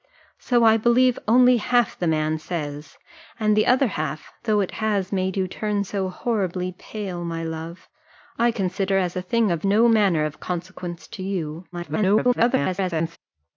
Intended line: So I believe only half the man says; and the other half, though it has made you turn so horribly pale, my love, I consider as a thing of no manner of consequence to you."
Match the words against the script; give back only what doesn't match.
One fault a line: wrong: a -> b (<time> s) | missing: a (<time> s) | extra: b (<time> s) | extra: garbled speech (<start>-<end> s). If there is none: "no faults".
extra: garbled speech (11.7-13.2 s)